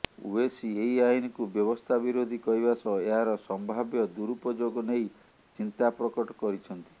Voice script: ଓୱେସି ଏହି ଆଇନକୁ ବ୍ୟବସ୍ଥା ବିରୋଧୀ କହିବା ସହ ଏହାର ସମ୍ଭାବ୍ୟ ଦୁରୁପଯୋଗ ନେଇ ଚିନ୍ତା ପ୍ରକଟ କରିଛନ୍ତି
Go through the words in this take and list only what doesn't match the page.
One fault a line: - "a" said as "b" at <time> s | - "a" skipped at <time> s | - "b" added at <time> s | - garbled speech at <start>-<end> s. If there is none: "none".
none